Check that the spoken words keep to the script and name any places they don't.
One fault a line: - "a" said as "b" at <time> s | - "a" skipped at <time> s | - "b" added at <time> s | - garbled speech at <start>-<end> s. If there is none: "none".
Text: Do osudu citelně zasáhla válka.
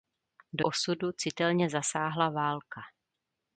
none